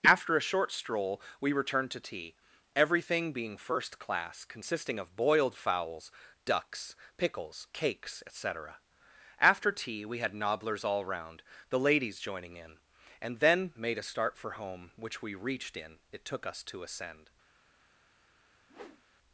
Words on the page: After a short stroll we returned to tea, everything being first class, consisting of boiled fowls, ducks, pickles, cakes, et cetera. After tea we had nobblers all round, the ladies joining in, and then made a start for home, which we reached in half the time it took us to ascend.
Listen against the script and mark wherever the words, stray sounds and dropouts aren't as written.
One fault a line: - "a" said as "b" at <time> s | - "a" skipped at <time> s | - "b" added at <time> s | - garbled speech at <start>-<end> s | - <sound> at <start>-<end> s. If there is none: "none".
- "half the time" skipped at 16.0 s
- whoosh at 18.7-19.0 s